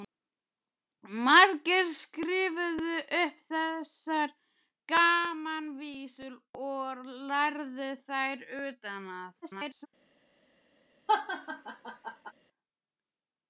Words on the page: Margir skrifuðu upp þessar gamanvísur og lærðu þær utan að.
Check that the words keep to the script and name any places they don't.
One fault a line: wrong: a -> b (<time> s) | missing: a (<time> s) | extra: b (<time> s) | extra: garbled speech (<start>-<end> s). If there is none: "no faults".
extra: garbled speech (9.4-9.9 s)